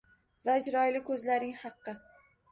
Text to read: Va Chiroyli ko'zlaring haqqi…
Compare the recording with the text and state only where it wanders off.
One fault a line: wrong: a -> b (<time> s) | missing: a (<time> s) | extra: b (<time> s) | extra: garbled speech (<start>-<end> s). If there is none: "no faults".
no faults